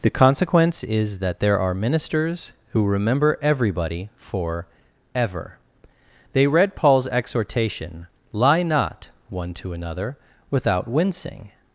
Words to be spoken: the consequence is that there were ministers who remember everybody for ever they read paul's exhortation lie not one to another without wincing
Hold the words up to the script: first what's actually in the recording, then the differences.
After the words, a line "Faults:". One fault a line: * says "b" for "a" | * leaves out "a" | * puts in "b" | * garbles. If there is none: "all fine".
the consequence is that there are ministers who remember everybody for ever they read paul's exhortation lie not one to another without wincing
Faults:
* says "are" for "were"